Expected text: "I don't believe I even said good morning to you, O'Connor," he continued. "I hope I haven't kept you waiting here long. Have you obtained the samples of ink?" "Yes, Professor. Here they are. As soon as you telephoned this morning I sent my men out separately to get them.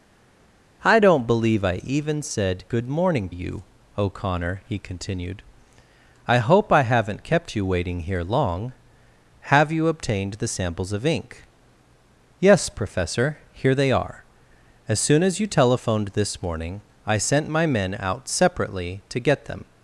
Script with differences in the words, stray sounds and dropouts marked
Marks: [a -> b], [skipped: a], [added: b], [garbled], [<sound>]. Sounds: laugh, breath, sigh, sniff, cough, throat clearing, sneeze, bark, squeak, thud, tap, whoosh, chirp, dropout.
"I don't believe I even said good morning [skipped: to] you, O'Connor," he continued. "I hope I haven't kept you waiting here long. Have you obtained the samples of ink?" "Yes, Professor. Here they are. As soon as you telephoned this morning I sent my men out separately to get them.